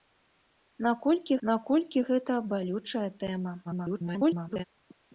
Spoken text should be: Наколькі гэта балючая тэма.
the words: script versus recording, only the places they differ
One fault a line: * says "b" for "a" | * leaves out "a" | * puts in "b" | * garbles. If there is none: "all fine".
* puts in "наколькі"
* garbles